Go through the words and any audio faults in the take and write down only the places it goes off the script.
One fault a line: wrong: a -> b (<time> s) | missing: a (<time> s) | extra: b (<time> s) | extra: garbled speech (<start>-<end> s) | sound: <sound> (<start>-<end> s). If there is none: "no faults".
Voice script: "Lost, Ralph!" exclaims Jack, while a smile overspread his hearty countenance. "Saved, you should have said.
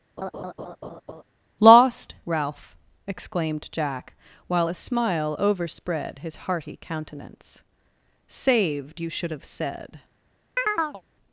sound: laugh (0.2-1.2 s)
wrong: exclaims -> exclaimed (3.0 s)
sound: chirp (10.6-11.0 s)